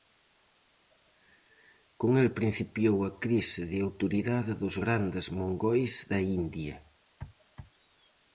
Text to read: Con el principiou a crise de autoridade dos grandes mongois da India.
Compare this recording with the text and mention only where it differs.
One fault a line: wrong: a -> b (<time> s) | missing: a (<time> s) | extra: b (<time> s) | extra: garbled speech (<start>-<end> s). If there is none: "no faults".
no faults